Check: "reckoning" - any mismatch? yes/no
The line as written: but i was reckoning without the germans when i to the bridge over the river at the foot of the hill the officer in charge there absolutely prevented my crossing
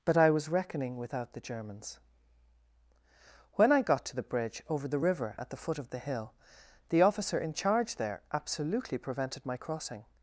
no